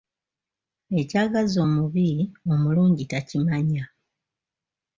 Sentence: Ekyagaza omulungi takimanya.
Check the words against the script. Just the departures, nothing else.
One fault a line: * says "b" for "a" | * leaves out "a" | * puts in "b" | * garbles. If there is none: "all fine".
* puts in "omubi"